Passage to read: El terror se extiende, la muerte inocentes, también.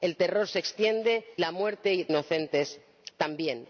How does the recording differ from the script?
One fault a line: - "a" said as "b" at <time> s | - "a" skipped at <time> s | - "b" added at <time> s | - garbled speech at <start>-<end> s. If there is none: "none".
none